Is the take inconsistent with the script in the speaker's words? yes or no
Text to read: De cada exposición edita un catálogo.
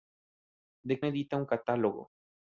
yes